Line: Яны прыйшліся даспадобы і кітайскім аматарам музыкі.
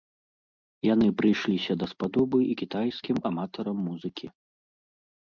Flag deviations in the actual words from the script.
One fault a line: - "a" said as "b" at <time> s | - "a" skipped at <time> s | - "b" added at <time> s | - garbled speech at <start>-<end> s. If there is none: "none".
none